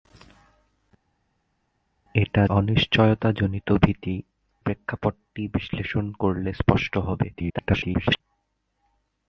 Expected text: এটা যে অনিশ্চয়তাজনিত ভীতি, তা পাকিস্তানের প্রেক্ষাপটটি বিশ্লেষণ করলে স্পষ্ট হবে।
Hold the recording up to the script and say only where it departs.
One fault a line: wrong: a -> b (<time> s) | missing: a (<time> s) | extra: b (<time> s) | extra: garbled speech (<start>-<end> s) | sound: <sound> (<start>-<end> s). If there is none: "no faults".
missing: যে (2.4 s)
missing: তা পাকিস্তানের (4.2 s)
extra: garbled speech (7.3-8.2 s)